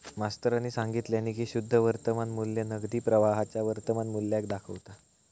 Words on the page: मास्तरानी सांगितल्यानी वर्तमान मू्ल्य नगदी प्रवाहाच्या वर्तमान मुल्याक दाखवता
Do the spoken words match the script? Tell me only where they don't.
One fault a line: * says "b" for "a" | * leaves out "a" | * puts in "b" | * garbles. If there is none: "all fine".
* puts in "की शुद्ध"